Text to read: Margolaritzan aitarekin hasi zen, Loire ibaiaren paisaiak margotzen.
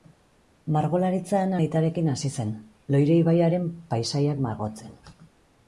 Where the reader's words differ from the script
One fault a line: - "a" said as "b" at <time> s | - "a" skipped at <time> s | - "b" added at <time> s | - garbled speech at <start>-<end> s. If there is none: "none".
none